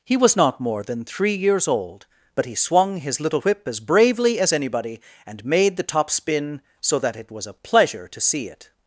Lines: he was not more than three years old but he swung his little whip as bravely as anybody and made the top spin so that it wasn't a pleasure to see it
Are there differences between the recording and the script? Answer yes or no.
yes